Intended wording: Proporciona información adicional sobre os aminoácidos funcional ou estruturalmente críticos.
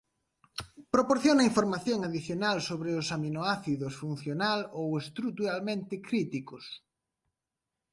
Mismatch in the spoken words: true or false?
false